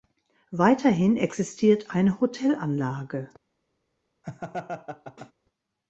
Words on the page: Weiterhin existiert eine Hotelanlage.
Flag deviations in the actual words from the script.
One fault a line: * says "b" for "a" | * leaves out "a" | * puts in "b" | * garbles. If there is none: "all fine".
all fine